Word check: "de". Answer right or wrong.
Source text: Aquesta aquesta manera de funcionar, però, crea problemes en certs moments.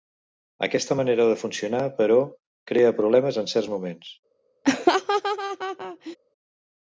right